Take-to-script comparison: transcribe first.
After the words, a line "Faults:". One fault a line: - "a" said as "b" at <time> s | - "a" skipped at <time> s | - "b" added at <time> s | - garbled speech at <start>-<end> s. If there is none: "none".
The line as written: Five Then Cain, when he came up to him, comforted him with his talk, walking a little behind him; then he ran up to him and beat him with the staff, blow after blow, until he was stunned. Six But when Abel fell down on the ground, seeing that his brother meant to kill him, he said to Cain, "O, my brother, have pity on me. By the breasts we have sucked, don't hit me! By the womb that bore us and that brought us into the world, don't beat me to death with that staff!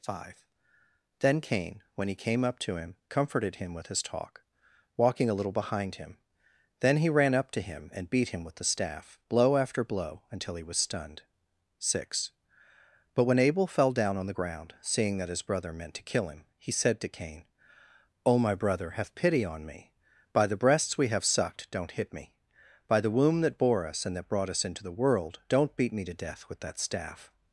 Five Then Cain, when he came up to him, comforted him with his talk, walking a little behind him; then he ran up to him and beat him with the staff, blow after blow, until he was stunned. Six But when Abel fell down on the ground, seeing that his brother meant to kill him, he said to Cain, "O, my brother, have pity on me. By the breasts we have sucked, don't hit me! By the womb that bore us and that brought us into the world, don't beat me to death with that staff!
Faults:
none